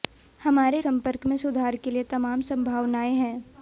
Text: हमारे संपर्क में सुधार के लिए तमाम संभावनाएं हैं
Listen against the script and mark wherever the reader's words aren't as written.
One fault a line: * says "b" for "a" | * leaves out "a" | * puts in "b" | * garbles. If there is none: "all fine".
all fine